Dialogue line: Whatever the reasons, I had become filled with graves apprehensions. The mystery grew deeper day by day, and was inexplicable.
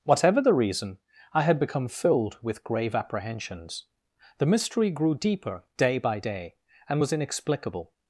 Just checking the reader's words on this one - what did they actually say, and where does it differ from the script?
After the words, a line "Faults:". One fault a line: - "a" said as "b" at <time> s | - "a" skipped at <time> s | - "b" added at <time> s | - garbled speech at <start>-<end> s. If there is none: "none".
Whatever the reason, I had become filled with grave apprehensions. The mystery grew deeper day by day, and was inexplicable.
Faults:
- "reasons" said as "reason" at 0.5 s
- "graves" said as "grave" at 2.6 s